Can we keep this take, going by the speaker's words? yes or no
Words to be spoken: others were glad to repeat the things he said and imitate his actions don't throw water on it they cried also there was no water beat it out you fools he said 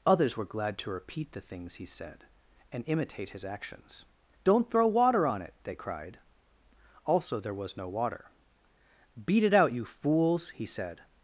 yes